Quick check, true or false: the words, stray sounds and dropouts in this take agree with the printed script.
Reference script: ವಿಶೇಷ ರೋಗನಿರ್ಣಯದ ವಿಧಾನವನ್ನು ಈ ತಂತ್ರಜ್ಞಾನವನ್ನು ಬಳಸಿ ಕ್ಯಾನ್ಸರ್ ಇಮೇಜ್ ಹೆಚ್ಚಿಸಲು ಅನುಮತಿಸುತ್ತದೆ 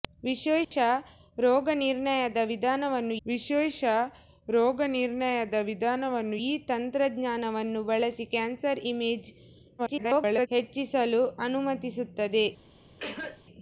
false